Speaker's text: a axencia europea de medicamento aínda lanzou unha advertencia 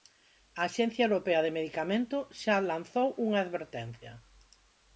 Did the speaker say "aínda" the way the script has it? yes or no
no